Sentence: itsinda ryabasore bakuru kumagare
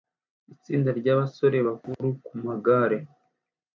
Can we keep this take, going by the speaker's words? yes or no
yes